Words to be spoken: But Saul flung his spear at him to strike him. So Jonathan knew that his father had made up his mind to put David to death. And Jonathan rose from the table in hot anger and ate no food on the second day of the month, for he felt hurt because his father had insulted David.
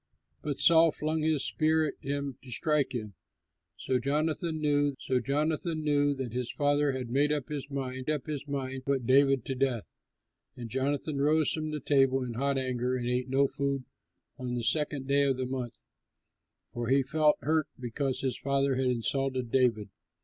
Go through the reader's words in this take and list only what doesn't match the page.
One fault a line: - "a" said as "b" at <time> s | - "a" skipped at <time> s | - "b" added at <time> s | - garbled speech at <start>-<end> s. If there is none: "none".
- "so Jonathan knew" added at 5.0 s
- "up his mind" added at 8.1 s